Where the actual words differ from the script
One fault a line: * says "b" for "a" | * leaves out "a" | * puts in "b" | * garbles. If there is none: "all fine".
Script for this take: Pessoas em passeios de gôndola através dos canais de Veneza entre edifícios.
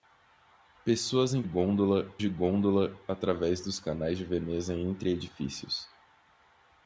* says "gôndola" for "passeios"